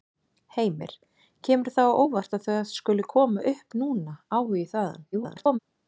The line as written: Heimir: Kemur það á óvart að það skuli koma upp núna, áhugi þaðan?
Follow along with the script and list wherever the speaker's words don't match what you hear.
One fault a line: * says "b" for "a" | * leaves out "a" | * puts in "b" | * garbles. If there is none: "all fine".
* garbles